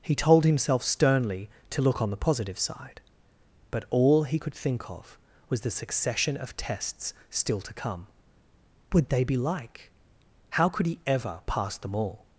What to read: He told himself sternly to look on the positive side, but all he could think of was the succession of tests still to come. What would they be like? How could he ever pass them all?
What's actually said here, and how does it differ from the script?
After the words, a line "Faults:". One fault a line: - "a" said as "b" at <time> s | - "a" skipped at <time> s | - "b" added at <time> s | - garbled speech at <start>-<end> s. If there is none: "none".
He told himself sternly to look on the positive side, but all he could think of was the succession of tests still to come. Would they be like? How could he ever pass them all?
Faults:
- "What" skipped at 8.1 s